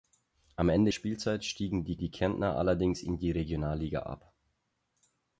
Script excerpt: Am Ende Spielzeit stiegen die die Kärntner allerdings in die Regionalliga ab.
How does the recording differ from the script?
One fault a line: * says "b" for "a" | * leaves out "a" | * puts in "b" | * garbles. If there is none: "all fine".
all fine